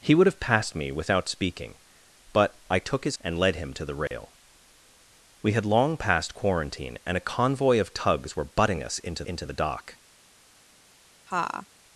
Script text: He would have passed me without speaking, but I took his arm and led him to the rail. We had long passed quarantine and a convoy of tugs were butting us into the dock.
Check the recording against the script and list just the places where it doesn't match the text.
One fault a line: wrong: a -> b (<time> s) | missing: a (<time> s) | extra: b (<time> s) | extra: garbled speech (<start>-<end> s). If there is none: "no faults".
missing: arm (3.2 s)
extra: into (9.2 s)